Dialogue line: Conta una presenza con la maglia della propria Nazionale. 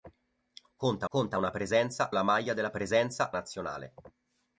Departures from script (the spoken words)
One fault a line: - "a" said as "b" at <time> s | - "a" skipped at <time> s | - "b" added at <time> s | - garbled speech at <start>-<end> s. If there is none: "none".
- "conta" added at 1.1 s
- "con" skipped at 2.1 s
- "propria" said as "presenza" at 2.7 s